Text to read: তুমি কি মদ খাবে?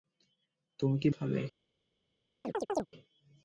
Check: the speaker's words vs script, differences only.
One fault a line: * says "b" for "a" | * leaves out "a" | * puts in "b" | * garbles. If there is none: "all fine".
* leaves out "মদ"